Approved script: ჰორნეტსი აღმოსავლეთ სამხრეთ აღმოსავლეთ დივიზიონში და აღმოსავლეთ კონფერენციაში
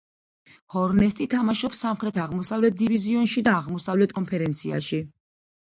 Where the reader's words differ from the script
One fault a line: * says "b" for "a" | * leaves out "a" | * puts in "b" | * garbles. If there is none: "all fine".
* says "თამაშობს" for "აღმოსავლეთ"